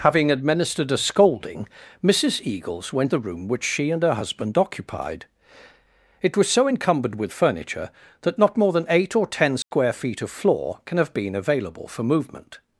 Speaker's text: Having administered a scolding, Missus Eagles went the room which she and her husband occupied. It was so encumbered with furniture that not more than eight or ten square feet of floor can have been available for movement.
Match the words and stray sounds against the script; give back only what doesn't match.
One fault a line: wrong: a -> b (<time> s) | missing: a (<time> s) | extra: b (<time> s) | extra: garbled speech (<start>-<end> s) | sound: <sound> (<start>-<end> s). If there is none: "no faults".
sound: dropout (9.6-9.7 s)